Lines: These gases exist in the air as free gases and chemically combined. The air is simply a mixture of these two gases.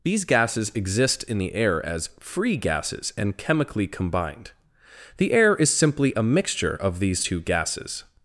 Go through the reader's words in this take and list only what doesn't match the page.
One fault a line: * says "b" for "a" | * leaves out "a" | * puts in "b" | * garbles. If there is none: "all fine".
all fine